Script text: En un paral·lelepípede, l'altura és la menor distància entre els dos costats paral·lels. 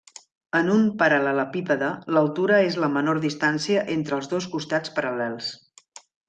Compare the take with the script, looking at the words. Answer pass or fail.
pass